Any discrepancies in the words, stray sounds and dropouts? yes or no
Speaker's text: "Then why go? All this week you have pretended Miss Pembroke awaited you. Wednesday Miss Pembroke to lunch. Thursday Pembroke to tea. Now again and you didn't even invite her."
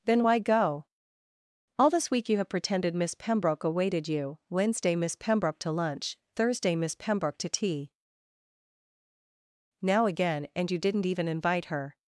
yes